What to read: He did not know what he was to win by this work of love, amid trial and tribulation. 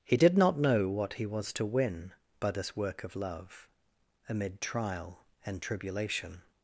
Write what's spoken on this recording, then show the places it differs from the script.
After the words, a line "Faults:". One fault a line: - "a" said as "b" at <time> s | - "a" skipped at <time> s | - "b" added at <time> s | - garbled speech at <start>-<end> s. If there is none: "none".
He did not know what he was to win by this work of love, amid trial and tribulation.
Faults:
none